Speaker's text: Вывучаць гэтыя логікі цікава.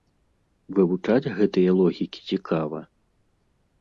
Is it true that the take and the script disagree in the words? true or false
false